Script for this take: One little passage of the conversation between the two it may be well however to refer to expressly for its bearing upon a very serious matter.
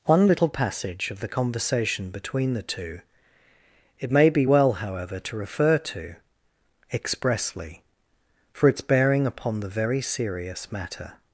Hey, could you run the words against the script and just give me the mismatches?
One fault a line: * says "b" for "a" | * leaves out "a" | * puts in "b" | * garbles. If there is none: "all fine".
* says "the" for "a"